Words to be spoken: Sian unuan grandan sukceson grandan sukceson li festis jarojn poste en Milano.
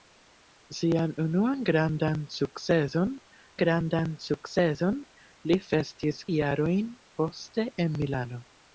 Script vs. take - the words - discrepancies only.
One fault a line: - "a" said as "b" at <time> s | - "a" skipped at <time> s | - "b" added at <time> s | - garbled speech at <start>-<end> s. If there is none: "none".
none